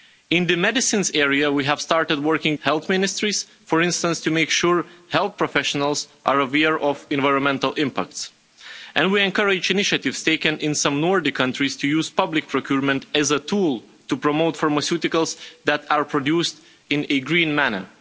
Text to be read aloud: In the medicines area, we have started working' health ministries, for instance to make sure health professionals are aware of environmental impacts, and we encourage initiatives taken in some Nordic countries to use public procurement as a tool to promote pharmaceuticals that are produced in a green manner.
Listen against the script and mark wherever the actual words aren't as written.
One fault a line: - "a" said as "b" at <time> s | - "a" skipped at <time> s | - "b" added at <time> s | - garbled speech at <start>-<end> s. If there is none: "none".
none